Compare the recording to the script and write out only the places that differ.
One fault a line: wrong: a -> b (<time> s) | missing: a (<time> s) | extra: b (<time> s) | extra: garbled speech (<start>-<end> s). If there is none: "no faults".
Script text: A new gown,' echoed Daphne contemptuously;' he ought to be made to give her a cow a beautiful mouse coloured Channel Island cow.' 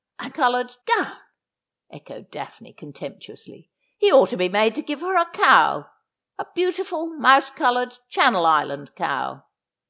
wrong: new -> coloured (0.3 s)